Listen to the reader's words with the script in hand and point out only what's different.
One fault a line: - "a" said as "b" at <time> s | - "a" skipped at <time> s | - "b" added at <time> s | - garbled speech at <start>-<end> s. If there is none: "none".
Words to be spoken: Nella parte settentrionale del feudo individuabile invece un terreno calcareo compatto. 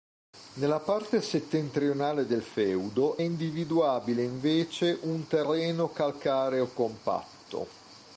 none